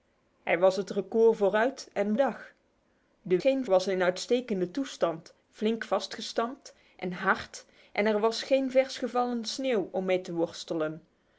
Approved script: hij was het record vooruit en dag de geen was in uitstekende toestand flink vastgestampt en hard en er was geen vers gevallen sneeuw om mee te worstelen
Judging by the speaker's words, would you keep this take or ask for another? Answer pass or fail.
pass